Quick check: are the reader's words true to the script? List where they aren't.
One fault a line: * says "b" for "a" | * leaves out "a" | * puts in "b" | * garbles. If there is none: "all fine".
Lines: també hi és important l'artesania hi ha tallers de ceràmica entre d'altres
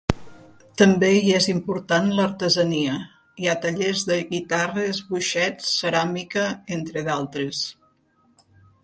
* puts in "guitarres boixets"